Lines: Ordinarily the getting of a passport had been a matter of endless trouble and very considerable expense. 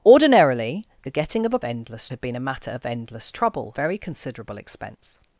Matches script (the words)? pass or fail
fail